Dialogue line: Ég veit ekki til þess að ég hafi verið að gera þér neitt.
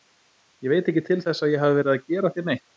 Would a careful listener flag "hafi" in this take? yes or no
no